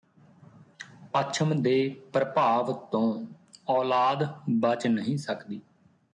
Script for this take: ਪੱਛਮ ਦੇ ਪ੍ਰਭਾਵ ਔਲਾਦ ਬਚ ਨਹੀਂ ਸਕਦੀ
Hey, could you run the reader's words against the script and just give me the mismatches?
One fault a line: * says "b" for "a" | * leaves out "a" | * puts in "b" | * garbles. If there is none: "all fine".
* puts in "ਤੋਂ"